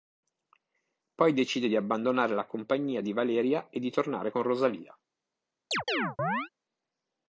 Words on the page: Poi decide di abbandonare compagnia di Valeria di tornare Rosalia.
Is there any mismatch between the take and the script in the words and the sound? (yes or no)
yes